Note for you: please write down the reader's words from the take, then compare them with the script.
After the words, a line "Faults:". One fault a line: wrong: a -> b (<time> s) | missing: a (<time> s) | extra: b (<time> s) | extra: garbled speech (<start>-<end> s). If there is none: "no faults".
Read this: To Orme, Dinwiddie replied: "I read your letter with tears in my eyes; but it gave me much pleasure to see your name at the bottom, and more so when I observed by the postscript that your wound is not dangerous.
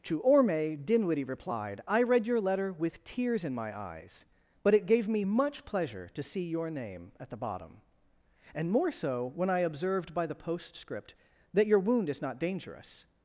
To Orme, Dinwiddie replied: "I read your letter with tears in my eyes; but it gave me much pleasure to see your name at the bottom, and more so when I observed by the postscript that your wound is not dangerous.
Faults:
no faults